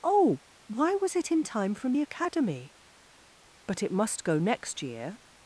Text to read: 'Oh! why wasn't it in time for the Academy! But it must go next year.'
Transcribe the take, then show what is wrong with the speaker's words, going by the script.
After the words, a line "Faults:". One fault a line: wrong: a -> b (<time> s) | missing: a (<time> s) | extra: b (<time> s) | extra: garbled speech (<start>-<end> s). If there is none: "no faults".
'Oh! why was it in time from the Academy! But it must go next year.'
Faults:
wrong: wasn't -> was (0.9 s)
wrong: for -> from (1.8 s)